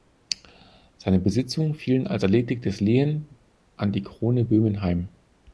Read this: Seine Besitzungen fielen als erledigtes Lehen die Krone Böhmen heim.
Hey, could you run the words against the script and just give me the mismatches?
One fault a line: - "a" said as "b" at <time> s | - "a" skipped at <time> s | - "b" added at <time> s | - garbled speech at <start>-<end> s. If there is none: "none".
- "an" added at 3.8 s